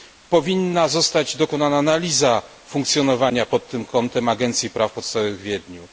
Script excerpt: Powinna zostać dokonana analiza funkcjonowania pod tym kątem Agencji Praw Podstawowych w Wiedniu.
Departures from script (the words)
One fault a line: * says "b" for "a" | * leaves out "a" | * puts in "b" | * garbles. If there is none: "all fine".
all fine